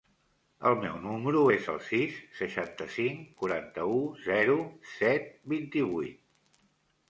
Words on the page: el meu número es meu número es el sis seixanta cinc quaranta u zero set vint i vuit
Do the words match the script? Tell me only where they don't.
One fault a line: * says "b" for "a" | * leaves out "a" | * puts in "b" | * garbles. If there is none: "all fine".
* leaves out "meu número es"